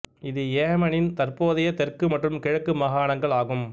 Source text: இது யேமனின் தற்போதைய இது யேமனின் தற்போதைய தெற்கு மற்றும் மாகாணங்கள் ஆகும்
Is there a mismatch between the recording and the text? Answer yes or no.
yes